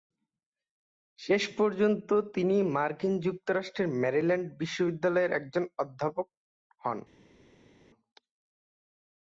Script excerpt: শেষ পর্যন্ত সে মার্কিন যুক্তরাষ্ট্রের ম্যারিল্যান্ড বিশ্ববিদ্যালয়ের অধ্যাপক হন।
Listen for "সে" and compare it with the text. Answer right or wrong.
wrong